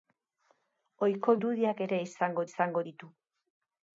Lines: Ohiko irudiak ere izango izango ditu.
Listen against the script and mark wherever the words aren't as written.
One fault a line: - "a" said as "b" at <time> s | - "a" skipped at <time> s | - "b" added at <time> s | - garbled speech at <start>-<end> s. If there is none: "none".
none